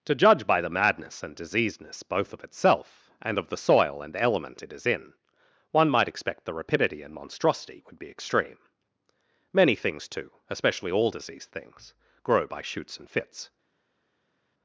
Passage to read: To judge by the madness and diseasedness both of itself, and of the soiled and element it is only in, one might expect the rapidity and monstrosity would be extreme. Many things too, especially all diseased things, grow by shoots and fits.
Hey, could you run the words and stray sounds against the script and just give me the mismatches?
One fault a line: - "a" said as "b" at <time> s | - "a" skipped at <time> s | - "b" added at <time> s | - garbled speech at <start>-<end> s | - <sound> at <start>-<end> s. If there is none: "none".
- "soiled" said as "soil" at 3.6 s
- "only" skipped at 4.9 s